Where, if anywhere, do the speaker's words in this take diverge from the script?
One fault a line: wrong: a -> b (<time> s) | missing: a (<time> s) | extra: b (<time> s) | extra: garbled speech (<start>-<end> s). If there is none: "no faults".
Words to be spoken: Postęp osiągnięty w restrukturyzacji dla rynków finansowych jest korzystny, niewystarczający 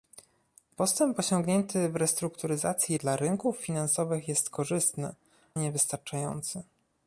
no faults